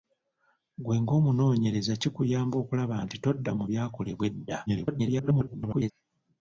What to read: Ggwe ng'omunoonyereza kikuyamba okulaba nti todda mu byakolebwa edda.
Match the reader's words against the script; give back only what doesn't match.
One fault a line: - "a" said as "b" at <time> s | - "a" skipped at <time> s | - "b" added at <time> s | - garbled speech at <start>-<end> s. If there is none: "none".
- garbled speech at 4.7-5.9 s